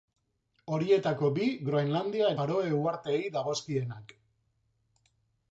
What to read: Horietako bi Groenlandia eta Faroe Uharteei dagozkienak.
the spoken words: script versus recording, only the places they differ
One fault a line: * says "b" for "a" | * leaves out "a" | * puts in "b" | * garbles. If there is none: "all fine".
* leaves out "eta"